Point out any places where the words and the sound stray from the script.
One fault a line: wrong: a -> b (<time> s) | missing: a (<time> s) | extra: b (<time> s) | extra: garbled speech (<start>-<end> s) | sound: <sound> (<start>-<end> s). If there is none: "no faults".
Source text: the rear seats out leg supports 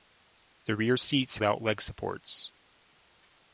no faults